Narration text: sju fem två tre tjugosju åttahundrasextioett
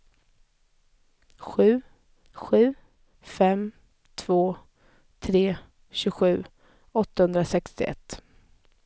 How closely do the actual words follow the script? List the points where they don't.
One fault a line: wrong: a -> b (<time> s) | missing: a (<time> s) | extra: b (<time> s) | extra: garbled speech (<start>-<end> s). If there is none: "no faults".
extra: sju (2.3 s)